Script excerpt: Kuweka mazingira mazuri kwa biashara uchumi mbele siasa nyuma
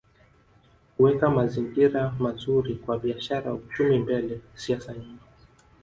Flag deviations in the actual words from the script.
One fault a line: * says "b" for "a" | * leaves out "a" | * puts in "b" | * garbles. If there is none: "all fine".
all fine